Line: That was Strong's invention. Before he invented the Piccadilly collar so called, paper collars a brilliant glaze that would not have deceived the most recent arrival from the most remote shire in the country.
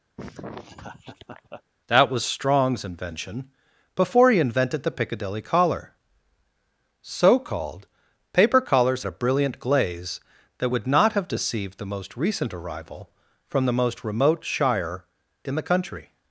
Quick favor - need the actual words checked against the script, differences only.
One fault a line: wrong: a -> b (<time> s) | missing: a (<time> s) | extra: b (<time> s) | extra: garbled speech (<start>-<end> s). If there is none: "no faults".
no faults